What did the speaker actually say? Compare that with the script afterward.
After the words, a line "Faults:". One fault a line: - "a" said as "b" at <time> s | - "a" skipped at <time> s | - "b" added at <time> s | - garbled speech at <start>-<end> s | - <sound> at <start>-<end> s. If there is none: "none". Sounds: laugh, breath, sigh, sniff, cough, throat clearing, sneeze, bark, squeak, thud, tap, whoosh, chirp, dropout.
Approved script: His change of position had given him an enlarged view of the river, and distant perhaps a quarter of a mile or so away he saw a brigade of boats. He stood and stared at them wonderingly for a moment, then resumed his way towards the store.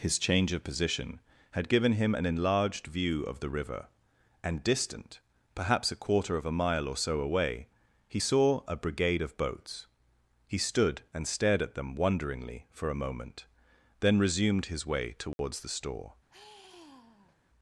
His change of position had given him an enlarged view of the river, and distant perhaps a quarter of a mile or so away he saw a brigade of boats. He stood and stared at them wonderingly for a moment, then resumed his way towards the store.
Faults:
- dropout at 15.3-15.4 s
- sigh at 16.3-17.4 s